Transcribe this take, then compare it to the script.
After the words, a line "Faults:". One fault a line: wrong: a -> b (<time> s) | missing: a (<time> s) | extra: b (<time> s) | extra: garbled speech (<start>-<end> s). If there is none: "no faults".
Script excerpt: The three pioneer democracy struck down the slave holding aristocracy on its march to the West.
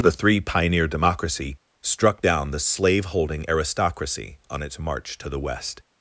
The three pioneer democracy struck down the slave holding aristocracy on its march to the West.
Faults:
no faults